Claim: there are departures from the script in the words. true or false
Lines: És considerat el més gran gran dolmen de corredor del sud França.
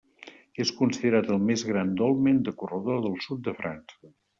true